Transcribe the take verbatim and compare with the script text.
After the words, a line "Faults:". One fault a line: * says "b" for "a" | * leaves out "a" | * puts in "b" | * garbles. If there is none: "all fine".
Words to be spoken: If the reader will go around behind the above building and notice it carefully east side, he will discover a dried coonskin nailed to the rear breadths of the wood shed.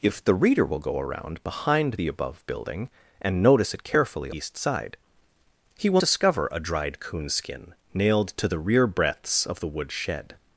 If the reader will go around behind the above building and notice it carefully east side, he will discover a dried coonskin nailed to the rear breadths of the wood shed.
Faults:
all fine